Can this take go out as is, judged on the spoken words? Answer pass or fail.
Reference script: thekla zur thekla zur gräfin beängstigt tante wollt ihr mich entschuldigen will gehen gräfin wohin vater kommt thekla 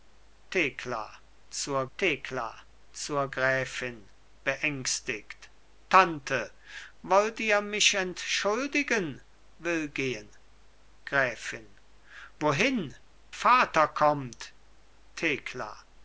pass